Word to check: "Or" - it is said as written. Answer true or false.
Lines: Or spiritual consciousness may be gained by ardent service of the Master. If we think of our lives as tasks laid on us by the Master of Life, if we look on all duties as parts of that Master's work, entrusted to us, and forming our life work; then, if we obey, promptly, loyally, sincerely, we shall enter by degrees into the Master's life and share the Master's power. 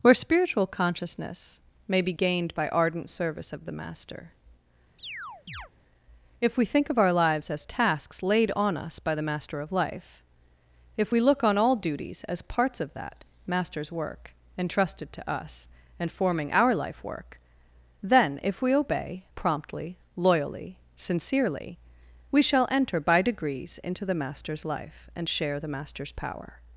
false